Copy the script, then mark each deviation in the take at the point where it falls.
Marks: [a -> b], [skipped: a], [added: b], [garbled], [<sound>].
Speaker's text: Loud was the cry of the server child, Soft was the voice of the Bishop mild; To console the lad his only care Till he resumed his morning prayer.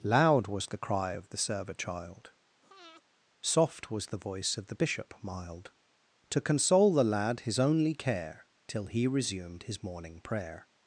Loud was the cry of the server child, [breath] Soft was the voice of the Bishop mild; To console the lad his only care Till he resumed his morning prayer.